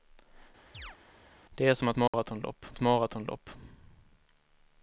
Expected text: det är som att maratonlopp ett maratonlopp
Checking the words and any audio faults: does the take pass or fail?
fail